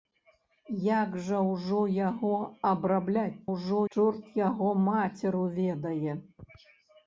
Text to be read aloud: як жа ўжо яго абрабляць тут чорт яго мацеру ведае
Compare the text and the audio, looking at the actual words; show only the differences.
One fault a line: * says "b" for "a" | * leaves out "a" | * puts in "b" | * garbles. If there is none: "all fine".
* says "ўжо" for "тут"